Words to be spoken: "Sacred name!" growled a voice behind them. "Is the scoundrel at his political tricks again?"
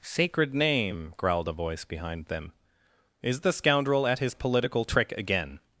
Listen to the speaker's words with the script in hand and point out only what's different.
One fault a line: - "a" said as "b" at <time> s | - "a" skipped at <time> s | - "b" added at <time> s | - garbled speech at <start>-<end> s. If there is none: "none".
- "tricks" said as "trick" at 4.8 s